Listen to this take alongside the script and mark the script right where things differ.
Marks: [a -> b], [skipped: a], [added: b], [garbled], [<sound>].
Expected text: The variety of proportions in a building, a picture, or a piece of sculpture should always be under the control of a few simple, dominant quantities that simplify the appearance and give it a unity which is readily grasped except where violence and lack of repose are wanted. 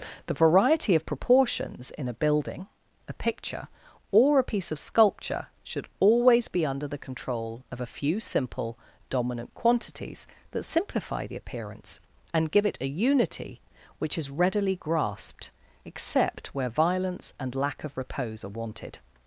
The variety of proportions in a building, a picture, or a piece of sculpture should always be under the control of a few simple, dominant quantities that simplify the appearance and give it a unity which is readily grasped except where violence and lack of repose are wanted.